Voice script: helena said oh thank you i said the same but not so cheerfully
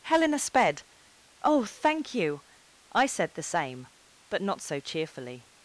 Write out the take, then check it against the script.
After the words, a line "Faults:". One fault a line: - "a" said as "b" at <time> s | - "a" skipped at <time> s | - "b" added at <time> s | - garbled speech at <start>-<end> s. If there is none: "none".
helena sped oh thank you i said the same but not so cheerfully
Faults:
- "said" said as "sped" at 0.4 s